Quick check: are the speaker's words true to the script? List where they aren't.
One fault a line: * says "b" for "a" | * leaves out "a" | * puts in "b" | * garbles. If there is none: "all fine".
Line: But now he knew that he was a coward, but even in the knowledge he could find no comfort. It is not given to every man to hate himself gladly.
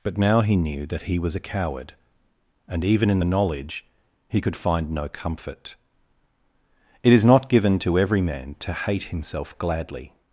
* says "and" for "but"